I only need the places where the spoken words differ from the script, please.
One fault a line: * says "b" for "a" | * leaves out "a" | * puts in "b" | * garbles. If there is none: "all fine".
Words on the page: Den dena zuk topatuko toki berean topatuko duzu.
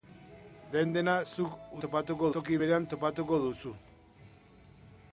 all fine